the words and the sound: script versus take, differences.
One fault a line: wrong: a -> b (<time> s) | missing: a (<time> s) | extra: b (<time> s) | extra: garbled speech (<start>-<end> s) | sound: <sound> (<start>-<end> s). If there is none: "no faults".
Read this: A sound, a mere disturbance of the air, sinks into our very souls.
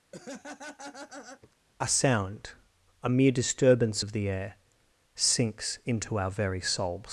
sound: laugh (0.1-1.5 s)